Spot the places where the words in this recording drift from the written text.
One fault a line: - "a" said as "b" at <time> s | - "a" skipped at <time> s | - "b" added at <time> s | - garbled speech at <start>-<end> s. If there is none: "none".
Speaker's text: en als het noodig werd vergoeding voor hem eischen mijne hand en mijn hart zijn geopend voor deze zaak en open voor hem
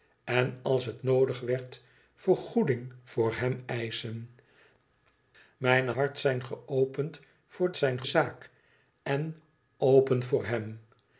- "hand en mijn" skipped at 5.9 s
- "deze" said as "zijn" at 7.8 s